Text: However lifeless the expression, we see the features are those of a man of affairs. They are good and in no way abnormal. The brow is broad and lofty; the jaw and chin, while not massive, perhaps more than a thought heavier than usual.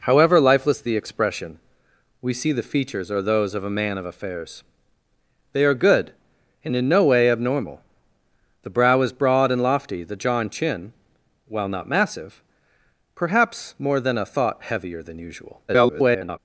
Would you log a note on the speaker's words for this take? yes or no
yes